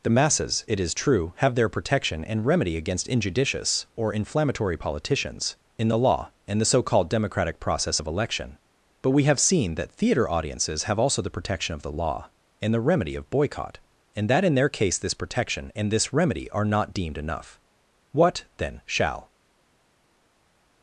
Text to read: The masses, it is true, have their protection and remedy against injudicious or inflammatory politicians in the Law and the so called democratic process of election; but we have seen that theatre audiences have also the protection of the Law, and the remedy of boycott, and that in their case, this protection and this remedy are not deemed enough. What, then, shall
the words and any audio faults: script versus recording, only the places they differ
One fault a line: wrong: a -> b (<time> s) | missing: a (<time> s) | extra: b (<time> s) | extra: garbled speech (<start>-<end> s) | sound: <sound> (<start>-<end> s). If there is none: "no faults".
no faults